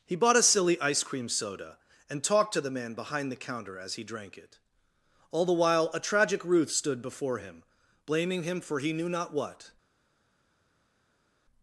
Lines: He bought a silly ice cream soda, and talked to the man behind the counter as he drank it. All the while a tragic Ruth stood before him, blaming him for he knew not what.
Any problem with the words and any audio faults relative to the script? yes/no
no